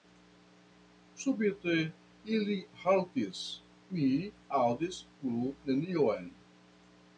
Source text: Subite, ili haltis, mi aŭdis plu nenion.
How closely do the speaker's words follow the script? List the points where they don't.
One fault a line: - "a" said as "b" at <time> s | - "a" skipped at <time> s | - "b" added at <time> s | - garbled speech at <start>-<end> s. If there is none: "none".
none